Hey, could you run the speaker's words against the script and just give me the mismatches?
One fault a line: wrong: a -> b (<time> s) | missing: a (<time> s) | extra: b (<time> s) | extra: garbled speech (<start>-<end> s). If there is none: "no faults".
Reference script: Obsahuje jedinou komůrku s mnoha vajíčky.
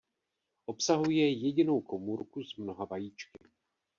no faults